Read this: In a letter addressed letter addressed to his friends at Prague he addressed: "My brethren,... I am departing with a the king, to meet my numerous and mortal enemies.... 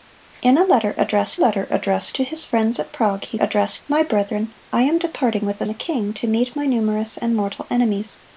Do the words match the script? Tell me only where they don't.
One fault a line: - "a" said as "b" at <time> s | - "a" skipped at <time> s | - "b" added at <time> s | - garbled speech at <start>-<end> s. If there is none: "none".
none